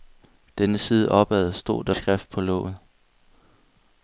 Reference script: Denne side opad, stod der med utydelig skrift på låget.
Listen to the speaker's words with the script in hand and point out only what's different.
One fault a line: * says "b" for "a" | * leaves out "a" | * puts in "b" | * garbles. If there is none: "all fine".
* leaves out "med utydelig"